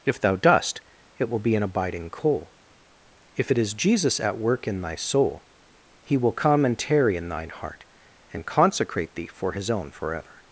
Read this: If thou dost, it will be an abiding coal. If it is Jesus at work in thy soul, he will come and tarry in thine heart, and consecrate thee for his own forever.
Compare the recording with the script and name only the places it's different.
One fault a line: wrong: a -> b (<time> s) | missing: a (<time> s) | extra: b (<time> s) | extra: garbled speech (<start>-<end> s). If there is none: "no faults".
no faults